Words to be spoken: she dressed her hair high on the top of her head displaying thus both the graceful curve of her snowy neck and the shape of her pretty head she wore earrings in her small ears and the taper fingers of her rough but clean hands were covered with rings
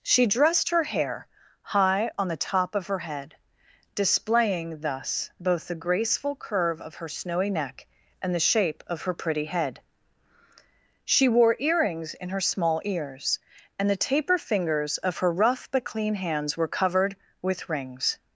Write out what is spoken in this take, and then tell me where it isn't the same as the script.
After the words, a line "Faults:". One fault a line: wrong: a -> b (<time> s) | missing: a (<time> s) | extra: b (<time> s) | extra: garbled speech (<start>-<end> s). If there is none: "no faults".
she dressed her hair high on the top of her head displaying thus both the graceful curve of her snowy neck and the shape of her pretty head she wore earrings in her small ears and the taper fingers of her rough but clean hands were covered with rings
Faults:
no faults